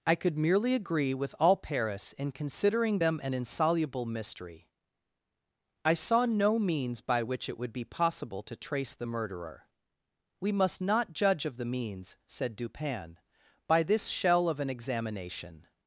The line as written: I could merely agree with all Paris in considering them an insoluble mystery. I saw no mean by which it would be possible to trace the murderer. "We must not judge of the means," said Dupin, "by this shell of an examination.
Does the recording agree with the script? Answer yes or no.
no